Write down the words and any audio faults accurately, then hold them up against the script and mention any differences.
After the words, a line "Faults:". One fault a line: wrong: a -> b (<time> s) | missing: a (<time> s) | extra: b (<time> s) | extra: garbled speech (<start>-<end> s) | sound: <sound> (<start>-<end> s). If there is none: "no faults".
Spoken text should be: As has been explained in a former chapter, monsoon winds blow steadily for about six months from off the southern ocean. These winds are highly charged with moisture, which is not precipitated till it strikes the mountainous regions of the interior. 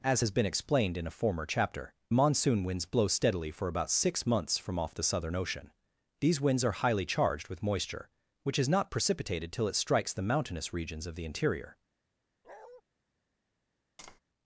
As has been explained in a former chapter, monsoon winds blow steadily for about six months from off the southern ocean. These winds are highly charged with moisture, which is not precipitated till it strikes the mountainous regions of the interior.
Faults:
sound: bark (12.4-12.8 s)
sound: tap (14.0-14.2 s)